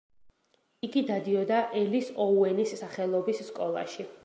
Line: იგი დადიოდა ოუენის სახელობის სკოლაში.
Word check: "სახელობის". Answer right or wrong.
right